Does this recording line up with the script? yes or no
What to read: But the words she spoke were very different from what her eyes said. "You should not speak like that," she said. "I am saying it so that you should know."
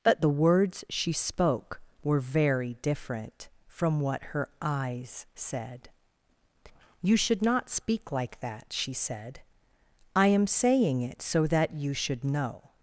yes